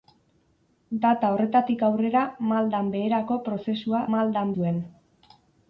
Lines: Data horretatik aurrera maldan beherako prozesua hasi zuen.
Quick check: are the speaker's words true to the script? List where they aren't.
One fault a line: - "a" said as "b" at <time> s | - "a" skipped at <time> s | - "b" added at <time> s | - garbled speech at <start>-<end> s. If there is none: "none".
- "hasi" said as "maldan" at 4.2 s